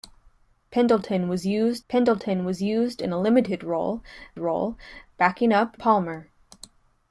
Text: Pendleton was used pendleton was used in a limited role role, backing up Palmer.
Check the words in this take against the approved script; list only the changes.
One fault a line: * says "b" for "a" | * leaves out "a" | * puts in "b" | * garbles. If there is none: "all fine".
all fine